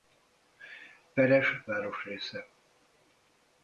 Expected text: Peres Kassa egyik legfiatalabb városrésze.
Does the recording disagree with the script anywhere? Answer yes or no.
yes